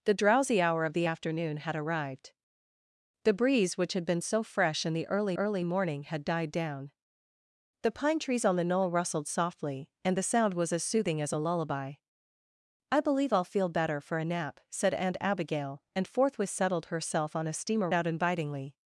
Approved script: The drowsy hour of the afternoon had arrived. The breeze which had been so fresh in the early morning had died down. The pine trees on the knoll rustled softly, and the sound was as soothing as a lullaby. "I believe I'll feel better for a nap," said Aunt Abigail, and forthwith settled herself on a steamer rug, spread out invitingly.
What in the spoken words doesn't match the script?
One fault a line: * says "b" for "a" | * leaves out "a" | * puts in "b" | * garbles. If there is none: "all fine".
* puts in "early"
* leaves out "rug spread"